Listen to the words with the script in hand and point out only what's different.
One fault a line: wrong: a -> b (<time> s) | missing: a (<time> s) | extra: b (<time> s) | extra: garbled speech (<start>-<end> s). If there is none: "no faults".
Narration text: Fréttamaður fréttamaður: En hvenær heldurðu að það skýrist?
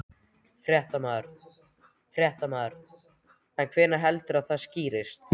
no faults